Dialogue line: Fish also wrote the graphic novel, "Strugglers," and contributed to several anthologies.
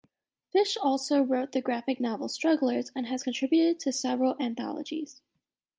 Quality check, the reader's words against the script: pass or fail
fail